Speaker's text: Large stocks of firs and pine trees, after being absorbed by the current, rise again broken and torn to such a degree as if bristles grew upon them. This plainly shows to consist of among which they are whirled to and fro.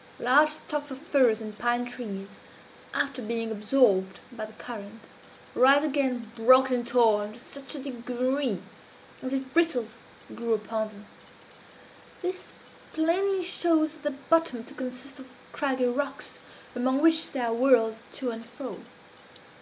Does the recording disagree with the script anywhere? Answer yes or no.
yes